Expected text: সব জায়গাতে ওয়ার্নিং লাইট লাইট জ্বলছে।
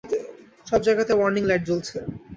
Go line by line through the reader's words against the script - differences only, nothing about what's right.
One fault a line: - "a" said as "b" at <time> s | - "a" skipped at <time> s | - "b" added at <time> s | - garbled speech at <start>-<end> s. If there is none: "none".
- "লাইট" skipped at 1.6 s